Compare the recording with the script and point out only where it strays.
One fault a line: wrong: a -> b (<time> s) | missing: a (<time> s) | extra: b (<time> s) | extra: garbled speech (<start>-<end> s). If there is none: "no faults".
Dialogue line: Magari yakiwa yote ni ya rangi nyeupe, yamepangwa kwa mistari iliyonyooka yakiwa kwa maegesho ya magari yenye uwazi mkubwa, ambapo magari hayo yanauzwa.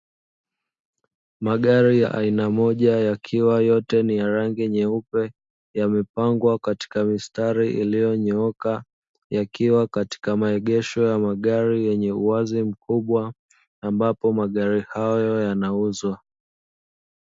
extra: ya aina moja (2.0 s)
wrong: kwa -> katika (6.6 s)
wrong: kwa -> katika (9.9 s)